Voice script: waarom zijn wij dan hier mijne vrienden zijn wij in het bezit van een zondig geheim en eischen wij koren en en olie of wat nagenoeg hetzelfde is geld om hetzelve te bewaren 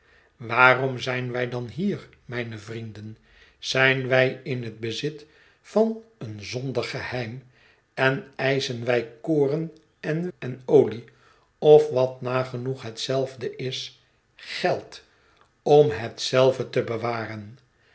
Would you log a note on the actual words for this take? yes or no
no